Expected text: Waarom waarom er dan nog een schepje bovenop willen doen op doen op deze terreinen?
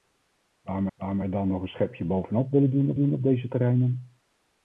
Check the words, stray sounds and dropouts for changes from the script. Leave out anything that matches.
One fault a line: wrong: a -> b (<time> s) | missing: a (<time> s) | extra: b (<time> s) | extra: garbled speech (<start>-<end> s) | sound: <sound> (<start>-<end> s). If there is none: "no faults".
no faults